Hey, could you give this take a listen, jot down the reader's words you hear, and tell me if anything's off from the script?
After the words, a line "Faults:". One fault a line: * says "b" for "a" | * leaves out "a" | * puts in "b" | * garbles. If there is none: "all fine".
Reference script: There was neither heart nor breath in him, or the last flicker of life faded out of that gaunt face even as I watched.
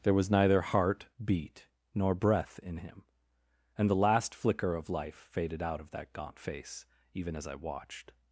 There was neither heart beat nor breath in him, and the last flicker of life faded out of that gaunt face even as I watched.
Faults:
* puts in "beat"
* says "and" for "or"